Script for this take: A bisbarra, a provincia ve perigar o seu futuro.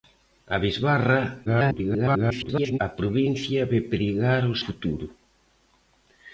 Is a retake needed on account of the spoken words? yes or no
yes